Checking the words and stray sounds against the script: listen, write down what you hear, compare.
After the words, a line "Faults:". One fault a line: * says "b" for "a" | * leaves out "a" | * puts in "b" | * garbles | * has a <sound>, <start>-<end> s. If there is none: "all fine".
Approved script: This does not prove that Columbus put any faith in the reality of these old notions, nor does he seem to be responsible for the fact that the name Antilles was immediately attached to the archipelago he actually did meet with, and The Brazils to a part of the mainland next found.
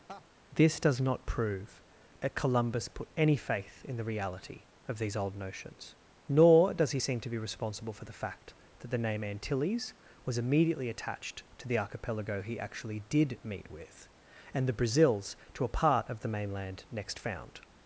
This does not prove that Columbus put any faith in the reality of these old notions, nor does he seem to be responsible for the fact that the name Antilles was immediately attached to the archipelago he actually did meet with, and The Brazils to a part of the mainland next found.
Faults:
* has a laugh, 0.1-0.2 s